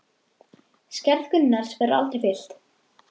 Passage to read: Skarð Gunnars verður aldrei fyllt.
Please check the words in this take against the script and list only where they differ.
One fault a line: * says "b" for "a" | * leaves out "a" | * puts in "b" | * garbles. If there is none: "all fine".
all fine